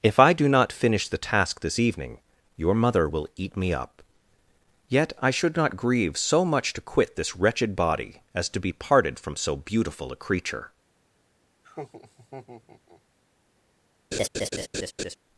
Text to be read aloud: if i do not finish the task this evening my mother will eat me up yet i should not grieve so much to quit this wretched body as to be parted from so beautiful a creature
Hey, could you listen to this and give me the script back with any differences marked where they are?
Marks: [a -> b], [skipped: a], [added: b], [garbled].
if i do not finish the task this evening [my -> your] mother will eat me up yet i should not grieve so much to quit this wretched body as to be parted from so beautiful a creature